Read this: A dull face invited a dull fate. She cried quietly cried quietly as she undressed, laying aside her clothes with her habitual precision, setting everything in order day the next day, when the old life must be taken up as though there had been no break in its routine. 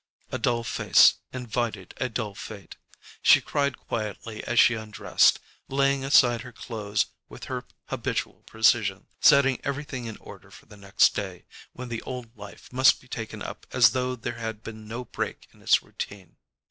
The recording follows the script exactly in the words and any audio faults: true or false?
false